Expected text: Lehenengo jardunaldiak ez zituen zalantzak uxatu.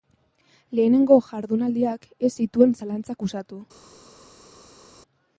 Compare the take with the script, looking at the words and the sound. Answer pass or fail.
pass